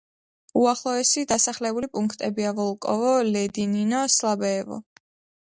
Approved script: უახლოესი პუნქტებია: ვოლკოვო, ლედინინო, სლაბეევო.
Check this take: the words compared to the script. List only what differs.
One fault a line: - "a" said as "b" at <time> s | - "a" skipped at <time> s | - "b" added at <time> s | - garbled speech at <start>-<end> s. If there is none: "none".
- "დასახლებული" added at 1.3 s